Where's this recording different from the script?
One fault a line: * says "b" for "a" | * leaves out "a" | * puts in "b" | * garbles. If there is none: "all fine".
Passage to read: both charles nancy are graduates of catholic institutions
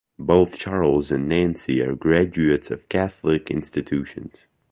* puts in "and"